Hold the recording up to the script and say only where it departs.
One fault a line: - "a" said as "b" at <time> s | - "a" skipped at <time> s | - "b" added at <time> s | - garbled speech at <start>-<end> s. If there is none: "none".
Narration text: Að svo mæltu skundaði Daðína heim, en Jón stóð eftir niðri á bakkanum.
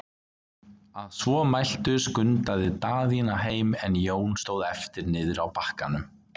none